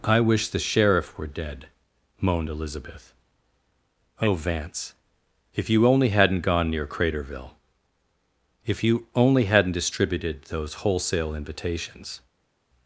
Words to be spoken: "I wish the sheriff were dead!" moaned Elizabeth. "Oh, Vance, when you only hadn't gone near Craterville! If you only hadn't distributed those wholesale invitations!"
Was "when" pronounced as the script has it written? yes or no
no